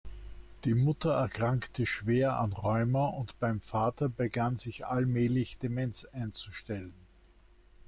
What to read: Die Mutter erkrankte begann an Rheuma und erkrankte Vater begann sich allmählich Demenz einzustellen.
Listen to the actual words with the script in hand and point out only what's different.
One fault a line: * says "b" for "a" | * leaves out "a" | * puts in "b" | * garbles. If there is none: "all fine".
* says "schwer" for "begann"
* says "beim" for "erkrankte"